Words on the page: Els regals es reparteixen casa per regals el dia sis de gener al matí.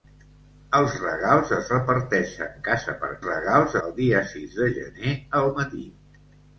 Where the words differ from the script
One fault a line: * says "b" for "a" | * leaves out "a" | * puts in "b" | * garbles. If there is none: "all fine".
all fine